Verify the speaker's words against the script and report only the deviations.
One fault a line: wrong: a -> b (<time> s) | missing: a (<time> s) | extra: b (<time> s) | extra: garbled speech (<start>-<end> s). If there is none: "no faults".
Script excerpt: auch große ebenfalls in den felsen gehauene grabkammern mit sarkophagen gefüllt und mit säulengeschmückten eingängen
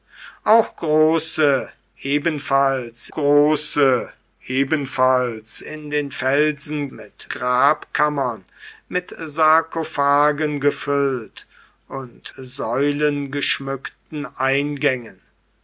extra: große ebenfalls (3.1 s)
wrong: gehauene -> mit (6.9 s)
missing: mit (12.3 s)